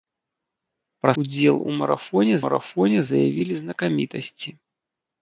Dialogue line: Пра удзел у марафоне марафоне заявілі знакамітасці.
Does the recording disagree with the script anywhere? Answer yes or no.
no